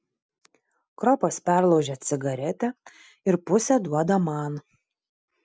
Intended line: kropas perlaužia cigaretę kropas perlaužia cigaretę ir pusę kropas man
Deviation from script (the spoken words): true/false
true